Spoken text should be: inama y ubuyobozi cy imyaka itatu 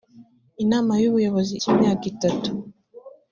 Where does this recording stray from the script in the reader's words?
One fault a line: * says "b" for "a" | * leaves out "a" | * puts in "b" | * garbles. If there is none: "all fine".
all fine